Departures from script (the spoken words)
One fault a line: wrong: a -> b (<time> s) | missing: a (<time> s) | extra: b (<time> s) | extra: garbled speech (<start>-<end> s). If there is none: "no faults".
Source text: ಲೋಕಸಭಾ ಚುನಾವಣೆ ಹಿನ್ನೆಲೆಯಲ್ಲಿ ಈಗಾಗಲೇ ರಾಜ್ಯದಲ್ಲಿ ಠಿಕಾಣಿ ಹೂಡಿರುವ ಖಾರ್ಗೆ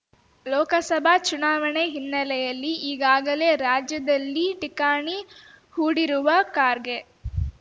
no faults